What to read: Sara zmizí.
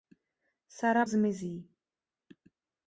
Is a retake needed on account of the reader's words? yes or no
no